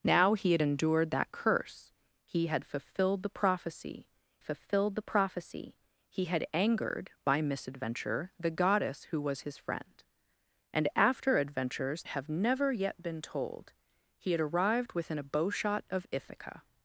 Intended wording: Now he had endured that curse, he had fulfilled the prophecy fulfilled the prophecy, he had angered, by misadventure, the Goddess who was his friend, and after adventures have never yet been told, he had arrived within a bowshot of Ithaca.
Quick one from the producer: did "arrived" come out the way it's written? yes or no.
yes